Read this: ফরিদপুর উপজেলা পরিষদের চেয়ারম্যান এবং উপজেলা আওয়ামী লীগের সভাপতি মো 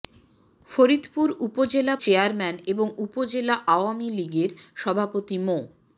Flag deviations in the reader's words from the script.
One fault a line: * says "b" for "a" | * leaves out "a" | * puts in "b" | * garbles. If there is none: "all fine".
* leaves out "পরিষদের"